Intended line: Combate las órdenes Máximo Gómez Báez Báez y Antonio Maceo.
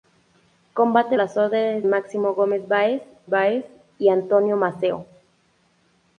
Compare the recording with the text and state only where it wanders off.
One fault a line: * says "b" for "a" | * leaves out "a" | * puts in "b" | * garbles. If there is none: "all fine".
all fine